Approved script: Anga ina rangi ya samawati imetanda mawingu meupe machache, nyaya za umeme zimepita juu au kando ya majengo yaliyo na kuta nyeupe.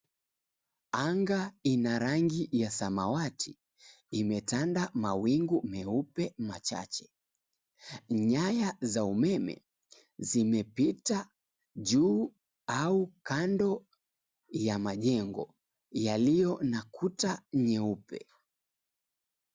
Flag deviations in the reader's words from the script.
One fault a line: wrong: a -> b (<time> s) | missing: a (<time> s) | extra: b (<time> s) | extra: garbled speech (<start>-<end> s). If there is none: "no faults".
no faults